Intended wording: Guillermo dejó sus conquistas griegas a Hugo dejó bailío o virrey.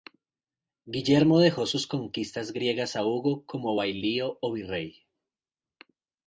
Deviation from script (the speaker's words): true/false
true